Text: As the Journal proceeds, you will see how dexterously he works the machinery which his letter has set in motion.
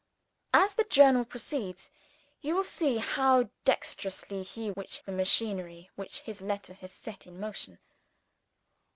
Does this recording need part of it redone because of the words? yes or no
yes